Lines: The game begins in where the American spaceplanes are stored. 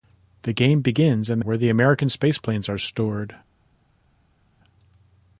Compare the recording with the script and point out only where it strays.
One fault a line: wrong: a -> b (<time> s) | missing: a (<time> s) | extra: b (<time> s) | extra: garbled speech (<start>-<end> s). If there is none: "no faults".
no faults